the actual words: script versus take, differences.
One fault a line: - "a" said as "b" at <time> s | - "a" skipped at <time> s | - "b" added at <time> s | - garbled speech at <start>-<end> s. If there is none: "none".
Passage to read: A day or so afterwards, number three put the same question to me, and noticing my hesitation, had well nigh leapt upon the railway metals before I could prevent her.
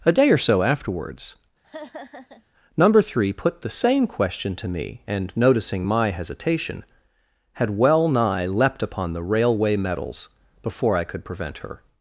none